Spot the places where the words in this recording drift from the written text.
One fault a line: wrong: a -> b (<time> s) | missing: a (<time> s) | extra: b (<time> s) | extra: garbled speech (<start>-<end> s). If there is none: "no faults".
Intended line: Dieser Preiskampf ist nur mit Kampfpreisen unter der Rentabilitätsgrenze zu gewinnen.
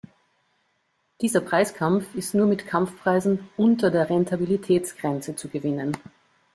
no faults